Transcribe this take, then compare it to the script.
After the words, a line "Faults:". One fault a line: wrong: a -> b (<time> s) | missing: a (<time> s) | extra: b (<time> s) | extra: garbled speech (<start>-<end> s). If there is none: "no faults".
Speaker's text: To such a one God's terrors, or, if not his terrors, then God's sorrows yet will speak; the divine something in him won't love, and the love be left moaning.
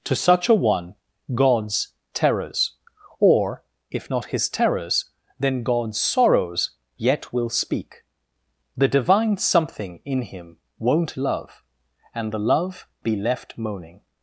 To such a one God's terrors, or, if not his terrors, then God's sorrows yet will speak; the divine something in him won't love, and the love be left moaning.
Faults:
no faults